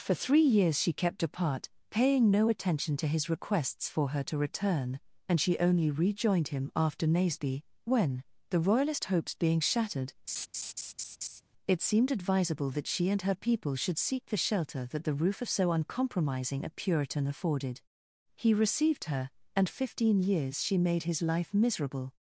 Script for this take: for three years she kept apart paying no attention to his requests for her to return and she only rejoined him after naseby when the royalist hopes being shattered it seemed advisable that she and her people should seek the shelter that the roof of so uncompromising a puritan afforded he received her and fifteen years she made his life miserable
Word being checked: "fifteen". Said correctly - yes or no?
yes